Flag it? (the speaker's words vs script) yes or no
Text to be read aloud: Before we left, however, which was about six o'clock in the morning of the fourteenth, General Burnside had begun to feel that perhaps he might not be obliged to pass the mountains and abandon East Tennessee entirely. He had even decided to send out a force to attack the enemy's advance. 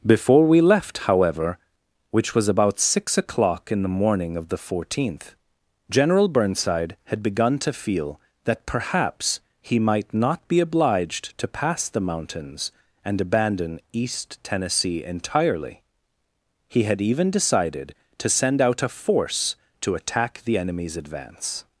no